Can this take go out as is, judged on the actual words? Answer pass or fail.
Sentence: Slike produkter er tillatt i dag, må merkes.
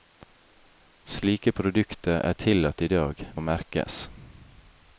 pass